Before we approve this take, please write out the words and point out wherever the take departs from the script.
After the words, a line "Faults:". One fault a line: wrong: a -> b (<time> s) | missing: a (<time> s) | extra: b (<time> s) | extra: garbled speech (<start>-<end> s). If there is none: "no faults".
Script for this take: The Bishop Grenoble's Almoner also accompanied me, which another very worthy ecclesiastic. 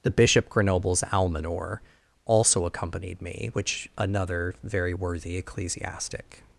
The Bishop Grenoble's Almoner also accompanied me, which another very worthy ecclesiastic.
Faults:
no faults